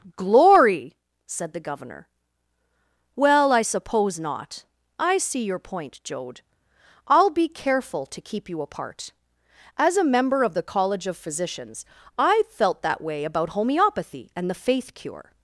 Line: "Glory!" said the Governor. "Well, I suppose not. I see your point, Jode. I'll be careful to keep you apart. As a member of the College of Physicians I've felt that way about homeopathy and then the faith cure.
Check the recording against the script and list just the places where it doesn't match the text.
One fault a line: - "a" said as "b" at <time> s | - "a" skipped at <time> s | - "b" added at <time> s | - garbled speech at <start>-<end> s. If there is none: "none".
- "then" skipped at 14.5 s